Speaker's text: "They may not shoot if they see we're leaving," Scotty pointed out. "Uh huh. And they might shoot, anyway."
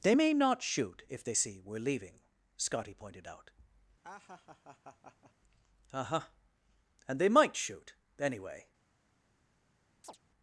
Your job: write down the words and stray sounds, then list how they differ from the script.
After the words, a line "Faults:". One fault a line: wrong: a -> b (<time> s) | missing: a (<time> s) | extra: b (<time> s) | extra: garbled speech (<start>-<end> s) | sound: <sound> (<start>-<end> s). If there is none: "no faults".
"They may not shoot if they see we're leaving," Scotty pointed out. "Uh huh. And they might shoot, anyway."
Faults:
sound: laugh (4.0-5.3 s)
sound: chirp (10.0-10.2 s)